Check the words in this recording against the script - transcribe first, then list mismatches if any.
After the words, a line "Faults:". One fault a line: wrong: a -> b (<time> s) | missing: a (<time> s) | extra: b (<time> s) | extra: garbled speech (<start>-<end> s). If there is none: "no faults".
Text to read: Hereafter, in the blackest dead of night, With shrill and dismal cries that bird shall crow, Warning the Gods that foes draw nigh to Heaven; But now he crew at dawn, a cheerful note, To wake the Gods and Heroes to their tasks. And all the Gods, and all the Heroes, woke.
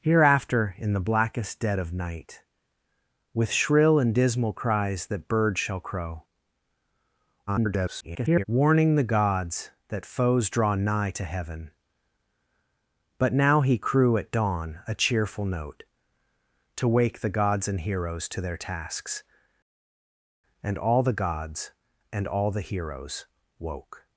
Hereafter, in the blackest dead of night, With shrill and dismal cries that bird shall crow, [garbled] Warning the Gods that foes draw nigh to Heaven; But now he crew at dawn, a cheerful note, To wake the Gods and Heroes to their tasks. And all the Gods, and all the Heroes, woke.
Faults:
extra: garbled speech (7.5-8.4 s)